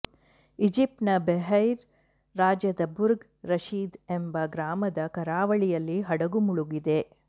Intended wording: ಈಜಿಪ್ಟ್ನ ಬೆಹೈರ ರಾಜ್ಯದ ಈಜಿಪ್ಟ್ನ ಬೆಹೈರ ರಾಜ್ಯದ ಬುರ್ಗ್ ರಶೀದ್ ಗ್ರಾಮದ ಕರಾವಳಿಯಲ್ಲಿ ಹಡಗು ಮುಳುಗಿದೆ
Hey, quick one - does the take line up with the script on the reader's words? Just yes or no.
no